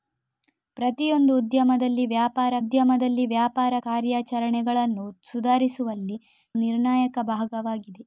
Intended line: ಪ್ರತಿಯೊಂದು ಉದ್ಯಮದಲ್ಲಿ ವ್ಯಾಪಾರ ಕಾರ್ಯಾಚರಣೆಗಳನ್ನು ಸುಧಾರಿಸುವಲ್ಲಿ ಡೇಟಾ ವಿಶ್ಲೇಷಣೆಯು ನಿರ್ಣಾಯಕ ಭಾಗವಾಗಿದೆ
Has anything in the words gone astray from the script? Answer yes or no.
yes